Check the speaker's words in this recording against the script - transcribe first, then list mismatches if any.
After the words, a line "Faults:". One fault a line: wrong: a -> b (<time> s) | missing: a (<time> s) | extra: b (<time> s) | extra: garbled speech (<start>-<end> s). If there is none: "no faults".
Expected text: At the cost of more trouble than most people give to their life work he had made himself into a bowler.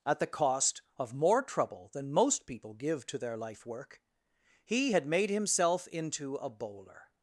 At the cost of more trouble than most people give to their life work he had made himself into a bowler.
Faults:
no faults